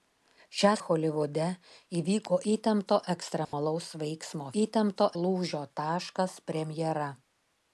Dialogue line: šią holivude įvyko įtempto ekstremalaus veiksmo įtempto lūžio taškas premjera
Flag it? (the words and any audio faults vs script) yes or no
yes